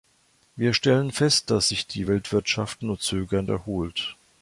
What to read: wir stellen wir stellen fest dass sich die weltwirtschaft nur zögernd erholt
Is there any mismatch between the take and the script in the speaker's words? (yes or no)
yes